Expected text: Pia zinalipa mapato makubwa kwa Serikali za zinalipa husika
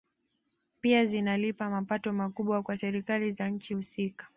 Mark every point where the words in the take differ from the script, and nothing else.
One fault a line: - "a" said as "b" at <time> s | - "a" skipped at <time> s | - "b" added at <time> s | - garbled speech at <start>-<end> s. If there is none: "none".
- "zinalipa" said as "nchi" at 3.5 s